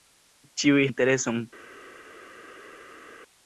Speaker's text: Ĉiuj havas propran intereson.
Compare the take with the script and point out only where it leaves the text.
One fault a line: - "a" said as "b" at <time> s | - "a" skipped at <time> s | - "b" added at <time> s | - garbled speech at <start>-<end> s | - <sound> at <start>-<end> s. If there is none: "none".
- "havas propran" skipped at 0.8 s